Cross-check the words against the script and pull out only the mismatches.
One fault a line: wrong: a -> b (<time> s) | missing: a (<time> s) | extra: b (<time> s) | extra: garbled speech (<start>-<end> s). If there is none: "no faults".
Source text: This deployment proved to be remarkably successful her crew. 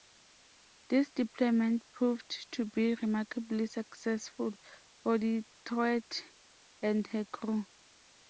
extra: for Detroit and (5.0 s)